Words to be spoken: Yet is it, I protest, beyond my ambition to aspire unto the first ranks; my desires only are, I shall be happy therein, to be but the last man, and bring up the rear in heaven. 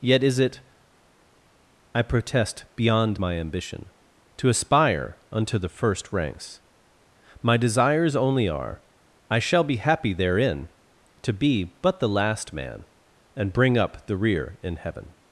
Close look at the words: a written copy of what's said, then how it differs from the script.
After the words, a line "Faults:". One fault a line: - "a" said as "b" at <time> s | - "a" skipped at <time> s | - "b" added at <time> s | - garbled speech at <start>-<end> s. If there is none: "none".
Yet is it, I protest, beyond my ambition to aspire unto the first ranks; my desires only are, I shall be happy therein, to be but the last man, and bring up the rear in heaven.
Faults:
none